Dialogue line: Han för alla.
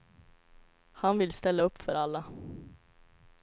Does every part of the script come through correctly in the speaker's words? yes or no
no